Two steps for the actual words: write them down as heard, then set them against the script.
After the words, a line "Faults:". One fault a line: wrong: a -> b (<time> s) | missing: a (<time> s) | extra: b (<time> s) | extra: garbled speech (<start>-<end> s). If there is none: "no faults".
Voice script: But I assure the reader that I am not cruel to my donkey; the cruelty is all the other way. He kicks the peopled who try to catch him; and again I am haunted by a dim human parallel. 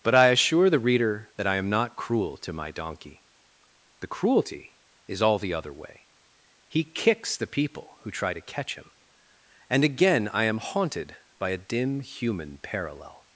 But I assure the reader that I am not cruel to my donkey; the cruelty is all the other way. He kicks the people who try to catch him; and again I am haunted by a dim human parallel.
Faults:
wrong: peopled -> people (7.5 s)